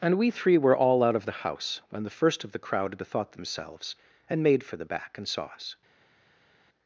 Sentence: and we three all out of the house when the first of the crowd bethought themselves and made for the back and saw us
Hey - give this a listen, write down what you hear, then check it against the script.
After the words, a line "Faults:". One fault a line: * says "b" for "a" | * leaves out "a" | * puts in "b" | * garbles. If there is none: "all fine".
and we three were all out of the house when the first of the crowd bethought themselves and made for the back and saw us
Faults:
* puts in "were"